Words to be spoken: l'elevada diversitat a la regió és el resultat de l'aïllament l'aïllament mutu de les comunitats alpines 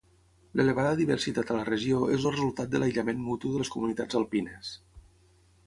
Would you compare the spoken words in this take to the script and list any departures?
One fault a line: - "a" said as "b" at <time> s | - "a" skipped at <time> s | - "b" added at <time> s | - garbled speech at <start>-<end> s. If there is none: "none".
- "l'aïllament" skipped at 3.2 s